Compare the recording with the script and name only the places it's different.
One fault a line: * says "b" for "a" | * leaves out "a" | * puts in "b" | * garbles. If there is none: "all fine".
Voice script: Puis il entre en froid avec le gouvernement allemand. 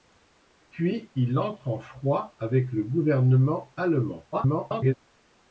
* garbles